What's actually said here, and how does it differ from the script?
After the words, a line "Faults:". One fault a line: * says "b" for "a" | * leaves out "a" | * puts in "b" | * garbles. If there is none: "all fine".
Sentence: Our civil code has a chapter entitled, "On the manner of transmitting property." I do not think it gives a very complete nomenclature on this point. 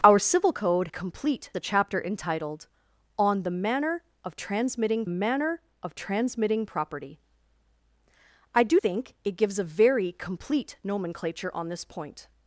Our civil code complete a chapter entitled, "On the manner of transmitting manner of transmitting property." I do think it gives a very complete nomenclature on this point.
Faults:
* says "complete" for "has"
* puts in "manner of transmitting"
* leaves out "not"